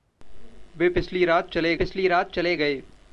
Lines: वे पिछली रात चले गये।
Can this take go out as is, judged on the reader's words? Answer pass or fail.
fail